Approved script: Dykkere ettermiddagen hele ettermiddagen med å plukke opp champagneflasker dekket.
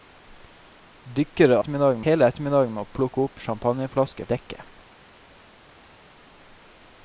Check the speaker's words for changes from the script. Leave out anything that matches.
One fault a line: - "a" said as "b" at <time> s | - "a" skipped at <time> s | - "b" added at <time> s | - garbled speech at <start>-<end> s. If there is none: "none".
none